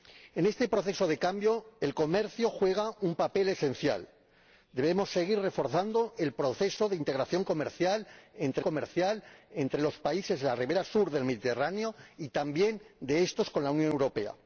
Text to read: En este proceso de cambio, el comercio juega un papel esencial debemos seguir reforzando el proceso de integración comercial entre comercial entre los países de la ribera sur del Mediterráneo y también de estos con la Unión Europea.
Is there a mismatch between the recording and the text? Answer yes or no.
no